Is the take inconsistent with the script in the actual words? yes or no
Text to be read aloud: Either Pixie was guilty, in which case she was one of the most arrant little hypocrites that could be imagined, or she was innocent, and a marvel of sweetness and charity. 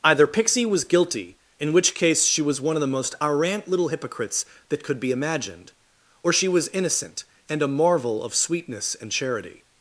no